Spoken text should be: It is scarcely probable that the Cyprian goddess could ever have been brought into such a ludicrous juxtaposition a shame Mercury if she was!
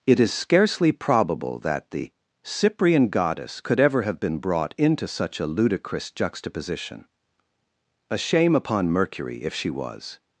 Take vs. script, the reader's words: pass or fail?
fail